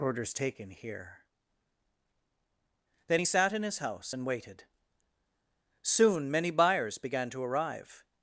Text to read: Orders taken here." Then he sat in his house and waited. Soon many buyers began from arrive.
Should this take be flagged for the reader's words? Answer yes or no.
yes